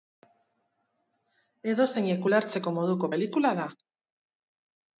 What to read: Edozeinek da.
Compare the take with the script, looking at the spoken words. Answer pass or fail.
fail